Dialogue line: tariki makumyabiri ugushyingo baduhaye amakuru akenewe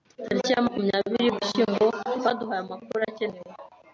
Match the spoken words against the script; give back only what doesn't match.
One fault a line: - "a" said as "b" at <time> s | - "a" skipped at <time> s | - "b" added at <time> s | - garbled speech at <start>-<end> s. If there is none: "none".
- "ya" added at 0.5 s